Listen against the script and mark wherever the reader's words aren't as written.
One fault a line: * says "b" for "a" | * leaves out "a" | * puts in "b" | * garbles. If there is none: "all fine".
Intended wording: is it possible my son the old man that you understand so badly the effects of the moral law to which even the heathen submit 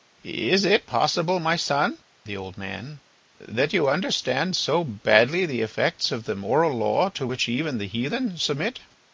all fine